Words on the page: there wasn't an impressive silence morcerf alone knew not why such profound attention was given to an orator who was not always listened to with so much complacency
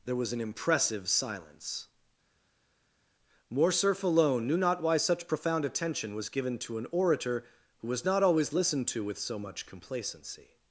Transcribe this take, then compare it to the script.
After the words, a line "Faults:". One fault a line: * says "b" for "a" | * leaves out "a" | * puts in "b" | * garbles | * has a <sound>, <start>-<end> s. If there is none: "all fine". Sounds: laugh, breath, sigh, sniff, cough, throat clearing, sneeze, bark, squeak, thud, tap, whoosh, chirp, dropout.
there was an impressive silence morcerf alone knew not why such profound attention was given to an orator who was not always listened to with so much complacency
Faults:
* says "was" for "wasn't"